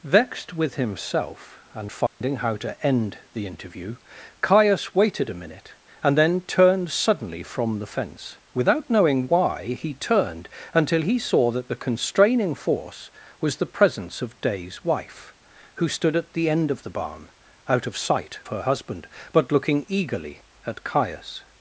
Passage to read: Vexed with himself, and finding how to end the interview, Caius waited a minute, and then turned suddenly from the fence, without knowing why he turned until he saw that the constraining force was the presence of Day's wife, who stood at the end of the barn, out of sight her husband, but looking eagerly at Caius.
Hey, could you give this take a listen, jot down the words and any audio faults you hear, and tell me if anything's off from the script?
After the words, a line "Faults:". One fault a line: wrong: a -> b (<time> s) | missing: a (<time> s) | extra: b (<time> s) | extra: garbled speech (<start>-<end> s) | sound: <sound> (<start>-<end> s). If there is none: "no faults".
Vexed with himself, and finding how to end the interview, Caius waited a minute, and then turned suddenly from the fence, without knowing why he turned until he saw that the constraining force was the presence of Day's wife, who stood at the end of the barn, out of sight her husband, but looking eagerly at Caius.
Faults:
sound: dropout (2.1-2.2 s)